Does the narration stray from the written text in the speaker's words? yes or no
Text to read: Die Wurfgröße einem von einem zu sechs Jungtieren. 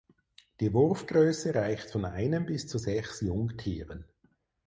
yes